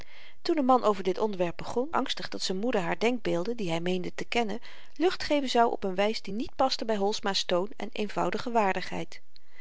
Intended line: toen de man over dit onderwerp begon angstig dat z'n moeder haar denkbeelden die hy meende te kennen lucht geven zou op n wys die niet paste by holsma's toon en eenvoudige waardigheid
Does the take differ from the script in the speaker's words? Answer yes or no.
no